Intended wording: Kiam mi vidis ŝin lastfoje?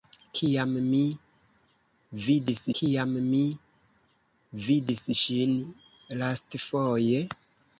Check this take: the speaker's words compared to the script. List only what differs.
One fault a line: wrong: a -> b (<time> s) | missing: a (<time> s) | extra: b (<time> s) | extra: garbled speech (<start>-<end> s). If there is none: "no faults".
extra: kiam mi vidis (2.8 s)